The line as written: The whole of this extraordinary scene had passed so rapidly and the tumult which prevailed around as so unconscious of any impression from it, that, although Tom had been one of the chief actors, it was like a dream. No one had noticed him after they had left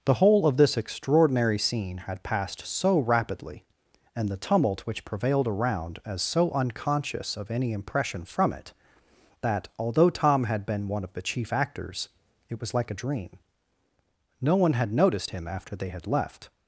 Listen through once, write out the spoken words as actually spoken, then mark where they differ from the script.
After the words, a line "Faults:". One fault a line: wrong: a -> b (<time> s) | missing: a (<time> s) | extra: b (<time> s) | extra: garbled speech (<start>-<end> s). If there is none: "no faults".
The whole of this extraordinary scene had passed so rapidly and the tumult which prevailed around as so unconscious of any impression from it, that, although Tom had been one of the chief actors, it was like a dream. No one had noticed him after they had left
Faults:
no faults